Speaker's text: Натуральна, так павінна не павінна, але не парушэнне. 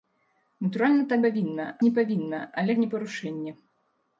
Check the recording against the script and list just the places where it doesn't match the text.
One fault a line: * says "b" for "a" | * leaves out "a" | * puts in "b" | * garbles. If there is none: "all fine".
all fine